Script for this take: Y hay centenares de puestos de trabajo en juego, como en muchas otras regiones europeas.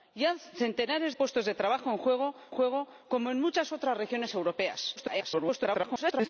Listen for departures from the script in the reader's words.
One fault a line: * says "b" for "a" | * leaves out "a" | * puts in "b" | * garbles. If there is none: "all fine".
* leaves out "de"
* puts in "juego"
* garbles